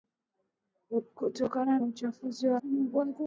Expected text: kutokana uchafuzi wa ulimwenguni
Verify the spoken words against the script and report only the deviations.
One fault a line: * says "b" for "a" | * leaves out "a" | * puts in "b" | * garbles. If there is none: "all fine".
all fine